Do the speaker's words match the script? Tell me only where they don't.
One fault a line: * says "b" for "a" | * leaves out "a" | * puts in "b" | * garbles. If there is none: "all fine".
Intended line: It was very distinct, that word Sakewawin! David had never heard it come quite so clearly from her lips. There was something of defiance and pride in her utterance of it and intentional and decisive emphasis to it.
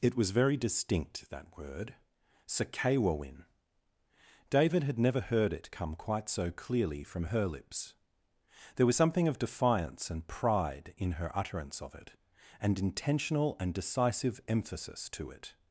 all fine